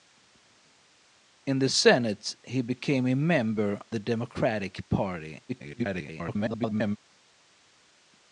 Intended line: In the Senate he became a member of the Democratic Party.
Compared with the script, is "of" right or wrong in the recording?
wrong